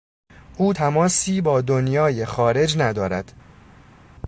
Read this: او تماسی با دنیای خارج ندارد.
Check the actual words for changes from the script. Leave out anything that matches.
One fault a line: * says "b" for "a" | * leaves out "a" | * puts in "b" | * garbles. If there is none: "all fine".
all fine